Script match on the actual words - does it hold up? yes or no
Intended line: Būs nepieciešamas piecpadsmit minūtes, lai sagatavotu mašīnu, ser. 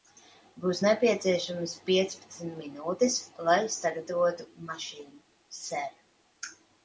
yes